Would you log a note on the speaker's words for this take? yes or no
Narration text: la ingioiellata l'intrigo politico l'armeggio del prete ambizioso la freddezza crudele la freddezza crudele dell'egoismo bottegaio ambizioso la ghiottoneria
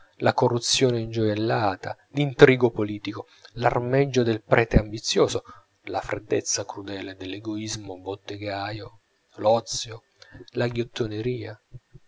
yes